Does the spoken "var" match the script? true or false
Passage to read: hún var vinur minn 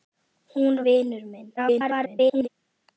false